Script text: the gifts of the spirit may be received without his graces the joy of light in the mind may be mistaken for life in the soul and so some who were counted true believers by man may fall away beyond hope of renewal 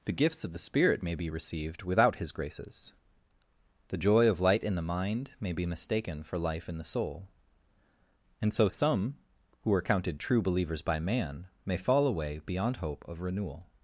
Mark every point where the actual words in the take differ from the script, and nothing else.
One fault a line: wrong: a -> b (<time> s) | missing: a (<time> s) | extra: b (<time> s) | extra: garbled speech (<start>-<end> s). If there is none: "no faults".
wrong: were -> are (9.7 s)